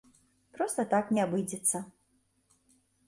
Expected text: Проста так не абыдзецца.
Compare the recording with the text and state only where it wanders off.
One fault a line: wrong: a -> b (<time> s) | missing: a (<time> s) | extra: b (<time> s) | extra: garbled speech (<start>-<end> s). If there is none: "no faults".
no faults